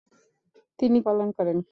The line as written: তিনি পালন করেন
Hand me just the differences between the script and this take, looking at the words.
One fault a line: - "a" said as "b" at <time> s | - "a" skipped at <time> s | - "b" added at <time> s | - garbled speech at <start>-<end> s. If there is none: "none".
none